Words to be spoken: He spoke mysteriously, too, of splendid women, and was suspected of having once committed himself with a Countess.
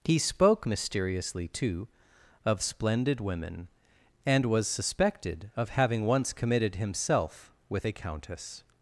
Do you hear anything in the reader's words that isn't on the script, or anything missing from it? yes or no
no